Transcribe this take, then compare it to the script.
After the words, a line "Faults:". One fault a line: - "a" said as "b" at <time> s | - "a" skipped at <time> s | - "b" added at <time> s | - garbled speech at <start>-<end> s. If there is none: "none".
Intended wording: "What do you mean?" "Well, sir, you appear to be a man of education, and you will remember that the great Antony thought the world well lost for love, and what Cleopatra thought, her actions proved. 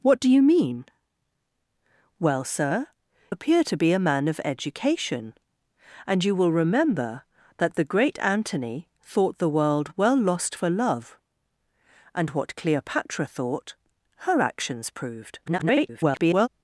"What do you mean?" "Well, sir, appear to be a man of education, and you will remember that the great Antony thought the world well lost for love, and what Cleopatra thought, her actions proved. [garbled]
Faults:
- "you" skipped at 2.9 s
- garbled speech at 15.5-16.5 s